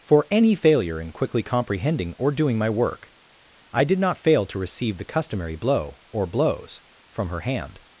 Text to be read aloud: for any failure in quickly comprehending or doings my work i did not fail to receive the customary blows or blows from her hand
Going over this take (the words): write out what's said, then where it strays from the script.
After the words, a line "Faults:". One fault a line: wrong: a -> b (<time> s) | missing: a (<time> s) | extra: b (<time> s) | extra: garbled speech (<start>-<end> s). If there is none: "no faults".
for any failure in quickly comprehending or doing my work i did not fail to receive the customary blow or blows from her hand
Faults:
wrong: doings -> doing (2.3 s)
wrong: blows -> blow (5.5 s)